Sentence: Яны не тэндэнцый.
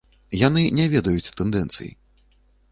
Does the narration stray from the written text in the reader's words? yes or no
yes